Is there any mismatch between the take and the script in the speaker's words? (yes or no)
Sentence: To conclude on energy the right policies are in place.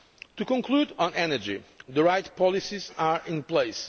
no